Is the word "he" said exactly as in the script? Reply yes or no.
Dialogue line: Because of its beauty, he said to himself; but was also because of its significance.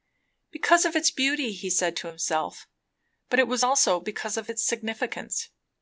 yes